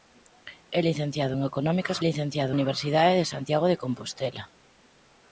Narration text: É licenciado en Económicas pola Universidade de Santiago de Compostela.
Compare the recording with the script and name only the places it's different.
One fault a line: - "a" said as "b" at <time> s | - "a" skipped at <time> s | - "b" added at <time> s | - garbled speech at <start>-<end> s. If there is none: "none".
- "pola" said as "licenciado" at 2.1 s